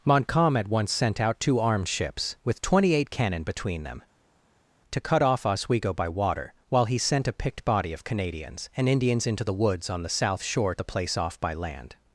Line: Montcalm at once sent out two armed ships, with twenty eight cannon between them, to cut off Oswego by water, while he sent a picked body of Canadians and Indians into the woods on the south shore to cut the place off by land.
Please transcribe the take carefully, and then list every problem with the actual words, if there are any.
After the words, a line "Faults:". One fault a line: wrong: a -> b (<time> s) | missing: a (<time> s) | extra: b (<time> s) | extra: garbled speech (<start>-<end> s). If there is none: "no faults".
Montcalm at once sent out two armed ships, with twenty eight cannon between them, to cut off Oswego by water, while he sent a picked body of Canadians and Indians into the woods on the south shore the place off by land.
Faults:
missing: to cut (10.7 s)